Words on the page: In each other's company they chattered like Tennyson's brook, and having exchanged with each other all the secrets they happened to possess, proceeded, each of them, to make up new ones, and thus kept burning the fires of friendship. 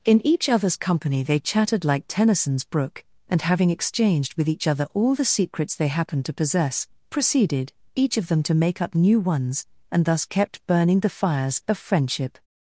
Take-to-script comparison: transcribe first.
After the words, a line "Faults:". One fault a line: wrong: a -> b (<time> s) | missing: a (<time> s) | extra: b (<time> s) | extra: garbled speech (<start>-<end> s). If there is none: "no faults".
In each other's company they chattered like Tennyson's brook, and having exchanged with each other all the secrets they happened to possess, proceeded, each of them, to make up new ones, and thus kept burning the fires of friendship.
Faults:
no faults